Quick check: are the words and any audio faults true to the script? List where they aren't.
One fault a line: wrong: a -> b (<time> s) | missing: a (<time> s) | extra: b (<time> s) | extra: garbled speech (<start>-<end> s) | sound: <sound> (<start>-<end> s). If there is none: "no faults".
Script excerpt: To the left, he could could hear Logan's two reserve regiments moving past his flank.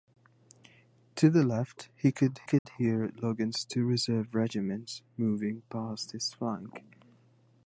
sound: dropout (2.6-2.7 s)